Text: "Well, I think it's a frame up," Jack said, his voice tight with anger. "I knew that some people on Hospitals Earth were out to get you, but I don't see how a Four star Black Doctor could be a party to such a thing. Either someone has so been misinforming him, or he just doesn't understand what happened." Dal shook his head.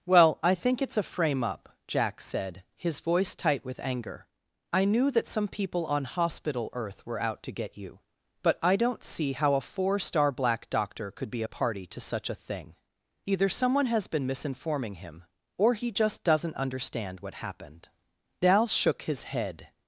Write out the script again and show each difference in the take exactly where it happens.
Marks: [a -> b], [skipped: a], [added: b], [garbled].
"Well, I think it's a frame up," Jack said, his voice tight with anger. "I knew that some people on [Hospitals -> Hospital] Earth were out to get you, but I don't see how a Four star Black Doctor could be a party to such a thing. Either someone has [skipped: so] been misinforming him, or he just doesn't understand what happened." Dal shook his head.